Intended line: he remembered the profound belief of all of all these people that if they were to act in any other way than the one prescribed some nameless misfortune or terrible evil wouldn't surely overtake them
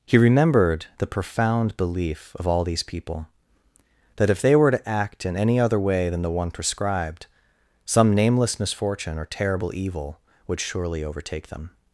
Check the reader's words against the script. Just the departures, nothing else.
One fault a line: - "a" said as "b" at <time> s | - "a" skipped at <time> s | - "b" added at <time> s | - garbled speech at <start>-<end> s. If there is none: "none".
- "of all" skipped at 2.6 s
- "wouldn't" said as "would" at 10.5 s